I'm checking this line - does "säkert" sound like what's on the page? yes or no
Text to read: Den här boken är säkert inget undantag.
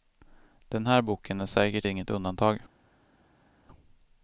yes